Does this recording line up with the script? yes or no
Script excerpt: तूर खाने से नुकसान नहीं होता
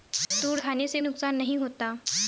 yes